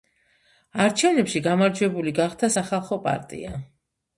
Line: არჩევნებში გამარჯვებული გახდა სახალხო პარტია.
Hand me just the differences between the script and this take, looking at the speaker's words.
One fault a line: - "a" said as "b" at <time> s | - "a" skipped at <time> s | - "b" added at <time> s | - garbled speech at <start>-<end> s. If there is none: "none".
none